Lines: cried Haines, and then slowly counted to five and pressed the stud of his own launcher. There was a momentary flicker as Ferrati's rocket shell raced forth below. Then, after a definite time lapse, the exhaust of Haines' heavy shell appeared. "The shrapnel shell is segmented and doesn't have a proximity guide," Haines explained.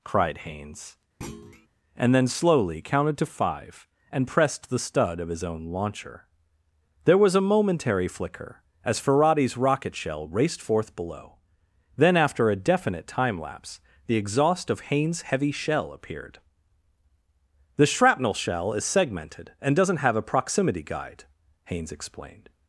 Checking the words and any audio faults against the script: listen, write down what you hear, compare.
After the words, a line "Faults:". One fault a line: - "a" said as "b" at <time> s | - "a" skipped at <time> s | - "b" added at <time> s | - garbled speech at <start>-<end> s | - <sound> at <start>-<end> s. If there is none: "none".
cried Haines, and then slowly counted to five and pressed the stud of his own launcher. There was a momentary flicker as Ferrati's rocket shell raced forth below. Then, after a definite time lapse, the exhaust of Haines' heavy shell appeared. "The shrapnel shell is segmented and doesn't have a proximity guide," Haines explained.
Faults:
- thud at 1.2-1.7 s